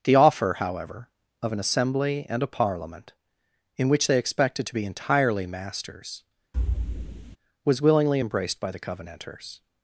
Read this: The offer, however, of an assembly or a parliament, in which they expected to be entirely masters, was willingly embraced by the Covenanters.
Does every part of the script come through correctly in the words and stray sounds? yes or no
no